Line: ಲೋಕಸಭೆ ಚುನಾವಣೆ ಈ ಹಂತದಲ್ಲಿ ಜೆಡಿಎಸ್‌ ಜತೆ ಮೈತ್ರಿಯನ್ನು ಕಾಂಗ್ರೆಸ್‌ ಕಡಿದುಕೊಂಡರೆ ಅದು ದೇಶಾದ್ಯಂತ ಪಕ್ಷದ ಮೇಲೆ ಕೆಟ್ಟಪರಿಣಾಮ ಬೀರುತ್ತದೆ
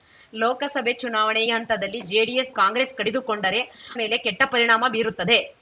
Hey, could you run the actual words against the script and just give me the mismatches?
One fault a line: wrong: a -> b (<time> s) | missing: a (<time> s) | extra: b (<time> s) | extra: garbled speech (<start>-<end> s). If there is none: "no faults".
missing: ಈ (1.4 s)
missing: ಜತೆ ಮೈತ್ರಿಯನ್ನು (2.5 s)
missing: ಅದು ದೇಶಾದ್ಯಂತ ಪಕ್ಷದ (3.6 s)